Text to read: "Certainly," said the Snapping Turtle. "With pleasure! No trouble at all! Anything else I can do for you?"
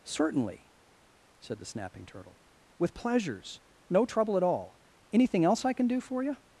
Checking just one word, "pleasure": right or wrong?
wrong